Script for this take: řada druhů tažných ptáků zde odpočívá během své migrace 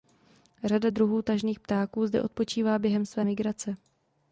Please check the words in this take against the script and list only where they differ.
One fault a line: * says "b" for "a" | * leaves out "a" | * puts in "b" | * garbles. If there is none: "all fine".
all fine